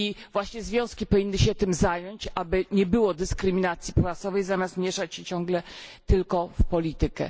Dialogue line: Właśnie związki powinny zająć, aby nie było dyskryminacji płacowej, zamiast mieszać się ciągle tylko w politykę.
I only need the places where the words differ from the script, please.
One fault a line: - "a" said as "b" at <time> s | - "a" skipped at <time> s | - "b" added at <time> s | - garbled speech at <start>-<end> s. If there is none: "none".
- "się tym" added at 1.4 s